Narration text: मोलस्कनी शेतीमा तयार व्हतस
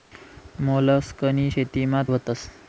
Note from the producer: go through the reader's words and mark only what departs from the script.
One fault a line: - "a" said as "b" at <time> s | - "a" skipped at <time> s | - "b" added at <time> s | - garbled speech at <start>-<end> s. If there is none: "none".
- "तयार" skipped at 2.0 s